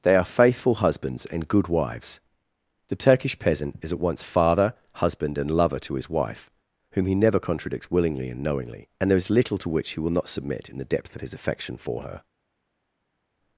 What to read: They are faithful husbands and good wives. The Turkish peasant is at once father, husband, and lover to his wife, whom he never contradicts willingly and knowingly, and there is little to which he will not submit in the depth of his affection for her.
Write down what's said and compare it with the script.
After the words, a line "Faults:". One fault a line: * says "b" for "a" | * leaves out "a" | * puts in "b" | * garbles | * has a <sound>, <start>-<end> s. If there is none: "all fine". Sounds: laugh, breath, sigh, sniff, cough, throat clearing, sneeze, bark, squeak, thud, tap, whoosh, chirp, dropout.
They are faithful husbands and good wives. The Turkish peasant is at once father, husband, and lover to his wife, whom he never contradicts willingly and knowingly, and there is little to which he will not submit in the depth of his affection for her.
Faults:
all fine